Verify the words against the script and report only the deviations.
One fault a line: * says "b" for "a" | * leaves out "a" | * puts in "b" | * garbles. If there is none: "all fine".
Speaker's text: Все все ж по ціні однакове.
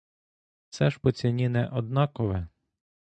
* leaves out "все"
* puts in "не"